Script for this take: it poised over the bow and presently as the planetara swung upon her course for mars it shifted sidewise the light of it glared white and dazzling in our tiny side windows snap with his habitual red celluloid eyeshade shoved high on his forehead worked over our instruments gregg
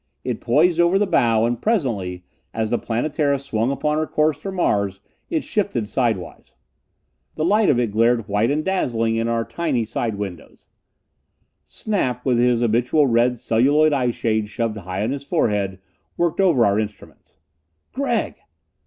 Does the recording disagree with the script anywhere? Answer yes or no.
no